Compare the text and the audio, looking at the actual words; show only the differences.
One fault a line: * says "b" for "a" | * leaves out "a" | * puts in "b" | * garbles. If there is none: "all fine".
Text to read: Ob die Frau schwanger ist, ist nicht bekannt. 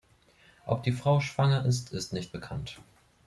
all fine